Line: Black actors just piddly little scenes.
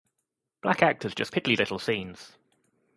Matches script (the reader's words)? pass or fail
pass